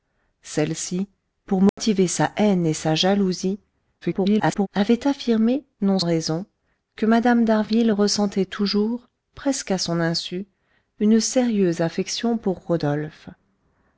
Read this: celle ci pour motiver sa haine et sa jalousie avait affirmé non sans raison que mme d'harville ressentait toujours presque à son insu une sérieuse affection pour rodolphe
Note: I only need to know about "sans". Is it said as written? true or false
false